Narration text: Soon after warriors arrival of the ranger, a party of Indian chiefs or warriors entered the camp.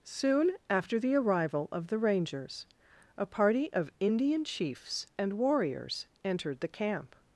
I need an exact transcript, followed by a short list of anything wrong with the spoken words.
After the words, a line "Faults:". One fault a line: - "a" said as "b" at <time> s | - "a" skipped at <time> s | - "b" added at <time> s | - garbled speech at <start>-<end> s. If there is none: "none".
Soon after the arrival of the rangers, a party of Indian chiefs and warriors entered the camp.
Faults:
- "warriors" said as "the" at 1.0 s
- "ranger" said as "rangers" at 2.0 s
- "or" said as "and" at 5.2 s